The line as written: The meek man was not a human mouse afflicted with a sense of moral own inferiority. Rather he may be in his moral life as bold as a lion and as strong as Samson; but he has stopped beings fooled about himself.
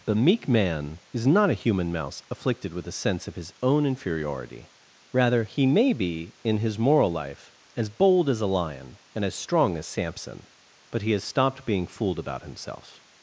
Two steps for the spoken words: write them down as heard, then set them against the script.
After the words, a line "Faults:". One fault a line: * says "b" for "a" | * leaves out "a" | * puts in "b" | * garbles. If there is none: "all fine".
The meek man is not a human mouse afflicted with a sense of his own inferiority. Rather he may be in his moral life as bold as a lion and as strong as Samson; but he has stopped being fooled about himself.
Faults:
* says "is" for "was"
* says "his" for "moral"
* says "being" for "beings"